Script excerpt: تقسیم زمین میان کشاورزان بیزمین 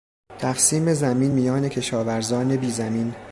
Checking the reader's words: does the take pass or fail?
pass